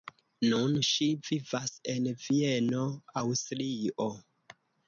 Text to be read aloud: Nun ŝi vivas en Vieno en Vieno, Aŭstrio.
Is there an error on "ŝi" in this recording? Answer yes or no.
no